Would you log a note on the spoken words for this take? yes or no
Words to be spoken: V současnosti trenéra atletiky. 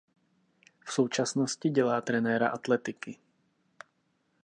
yes